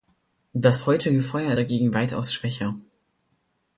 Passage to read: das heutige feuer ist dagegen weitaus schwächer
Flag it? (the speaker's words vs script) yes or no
yes